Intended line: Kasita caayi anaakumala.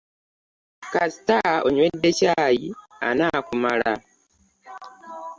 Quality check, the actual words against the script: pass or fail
fail